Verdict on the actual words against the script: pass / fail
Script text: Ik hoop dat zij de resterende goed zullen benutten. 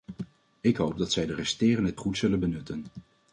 pass